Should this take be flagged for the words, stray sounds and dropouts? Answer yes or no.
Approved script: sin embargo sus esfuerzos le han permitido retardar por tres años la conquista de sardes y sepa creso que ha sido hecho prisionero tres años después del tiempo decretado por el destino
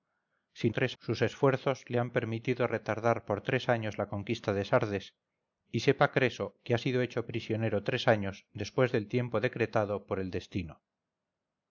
yes